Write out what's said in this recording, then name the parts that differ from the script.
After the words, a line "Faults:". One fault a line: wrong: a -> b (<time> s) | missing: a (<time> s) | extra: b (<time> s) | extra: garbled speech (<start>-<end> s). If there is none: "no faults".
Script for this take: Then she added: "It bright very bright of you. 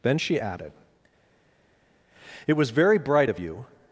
Then she added: "It was very bright of you.
Faults:
wrong: bright -> was (2.5 s)